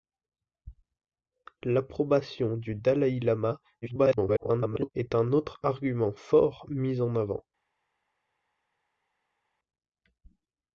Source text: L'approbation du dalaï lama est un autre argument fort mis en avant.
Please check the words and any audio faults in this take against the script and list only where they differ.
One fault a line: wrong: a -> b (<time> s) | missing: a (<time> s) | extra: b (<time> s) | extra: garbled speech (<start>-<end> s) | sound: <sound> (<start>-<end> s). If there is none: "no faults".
extra: garbled speech (3.8-4.9 s)